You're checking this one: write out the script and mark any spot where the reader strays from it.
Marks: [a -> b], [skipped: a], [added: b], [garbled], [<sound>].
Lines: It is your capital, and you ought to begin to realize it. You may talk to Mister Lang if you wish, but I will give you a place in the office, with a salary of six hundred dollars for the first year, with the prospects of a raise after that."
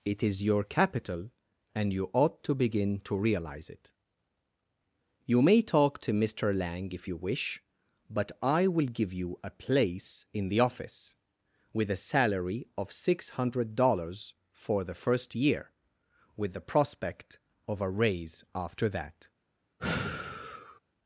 It is your capital, and you ought to begin to realize it. You may talk to Mister Lang if you wish, but I will give you a place in the office, with a salary of six hundred dollars for the first year, with the [prospects -> prospect] of a raise after that." [sigh]